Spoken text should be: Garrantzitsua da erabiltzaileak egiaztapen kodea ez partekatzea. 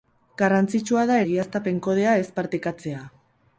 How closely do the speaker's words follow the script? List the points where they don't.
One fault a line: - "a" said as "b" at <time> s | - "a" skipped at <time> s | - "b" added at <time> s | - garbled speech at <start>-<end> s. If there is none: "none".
- "erabiltzaileak" skipped at 1.2 s